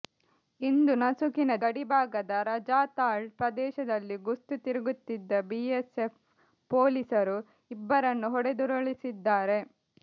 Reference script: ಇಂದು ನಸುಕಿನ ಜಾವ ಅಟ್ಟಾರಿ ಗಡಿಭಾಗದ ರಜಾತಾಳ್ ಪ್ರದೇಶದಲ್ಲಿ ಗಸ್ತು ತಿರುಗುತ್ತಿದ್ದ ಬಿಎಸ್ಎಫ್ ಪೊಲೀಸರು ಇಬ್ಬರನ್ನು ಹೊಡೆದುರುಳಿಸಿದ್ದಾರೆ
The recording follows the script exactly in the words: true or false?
false